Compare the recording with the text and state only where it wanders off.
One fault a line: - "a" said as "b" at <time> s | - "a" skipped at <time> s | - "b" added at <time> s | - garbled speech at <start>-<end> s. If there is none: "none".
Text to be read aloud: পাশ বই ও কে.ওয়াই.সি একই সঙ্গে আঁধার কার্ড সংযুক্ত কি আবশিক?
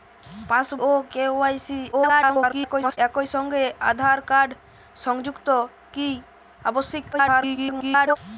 - "বই" skipped at 0.7 s
- garbled speech at 1.9-3.0 s
- garbled speech at 7.1-8.2 s